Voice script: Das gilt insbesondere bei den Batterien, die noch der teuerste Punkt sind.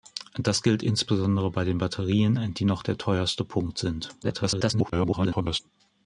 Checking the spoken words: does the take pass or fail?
fail